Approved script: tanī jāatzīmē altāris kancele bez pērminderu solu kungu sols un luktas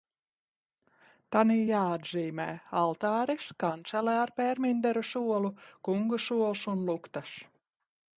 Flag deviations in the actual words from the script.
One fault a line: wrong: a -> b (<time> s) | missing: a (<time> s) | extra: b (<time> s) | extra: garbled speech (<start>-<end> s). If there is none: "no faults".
wrong: bez -> ar (4.2 s)